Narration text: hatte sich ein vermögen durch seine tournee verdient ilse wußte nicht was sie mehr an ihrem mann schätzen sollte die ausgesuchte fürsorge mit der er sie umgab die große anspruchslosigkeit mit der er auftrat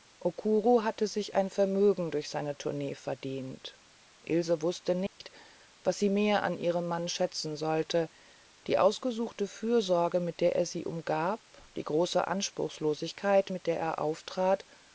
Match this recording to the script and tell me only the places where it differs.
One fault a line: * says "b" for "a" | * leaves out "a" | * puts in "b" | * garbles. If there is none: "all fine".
all fine